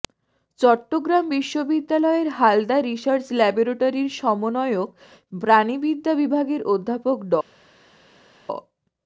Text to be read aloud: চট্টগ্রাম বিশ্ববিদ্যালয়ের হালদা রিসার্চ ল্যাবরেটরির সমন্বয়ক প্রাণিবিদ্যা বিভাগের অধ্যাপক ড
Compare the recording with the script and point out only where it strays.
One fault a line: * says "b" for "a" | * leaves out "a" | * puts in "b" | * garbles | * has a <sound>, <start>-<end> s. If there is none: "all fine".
all fine